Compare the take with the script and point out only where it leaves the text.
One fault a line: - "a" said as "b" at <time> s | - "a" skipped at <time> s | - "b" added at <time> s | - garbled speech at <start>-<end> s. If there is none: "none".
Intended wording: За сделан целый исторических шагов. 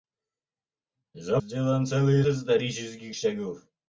none